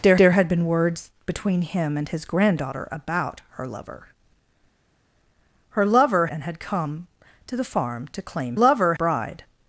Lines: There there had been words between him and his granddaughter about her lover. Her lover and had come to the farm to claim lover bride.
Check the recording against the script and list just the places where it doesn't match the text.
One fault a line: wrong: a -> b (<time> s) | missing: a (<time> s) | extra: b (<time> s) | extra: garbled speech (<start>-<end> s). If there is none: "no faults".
no faults